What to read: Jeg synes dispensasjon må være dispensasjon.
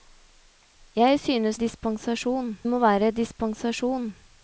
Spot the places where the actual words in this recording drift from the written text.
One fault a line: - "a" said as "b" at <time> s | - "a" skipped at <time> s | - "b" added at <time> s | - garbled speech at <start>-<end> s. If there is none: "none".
none